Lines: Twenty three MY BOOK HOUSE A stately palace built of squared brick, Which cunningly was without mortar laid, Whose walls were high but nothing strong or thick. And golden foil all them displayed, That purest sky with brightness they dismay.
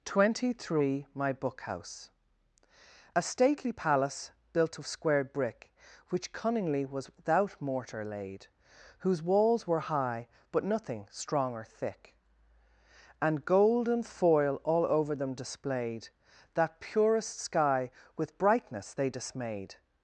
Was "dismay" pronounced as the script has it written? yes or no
no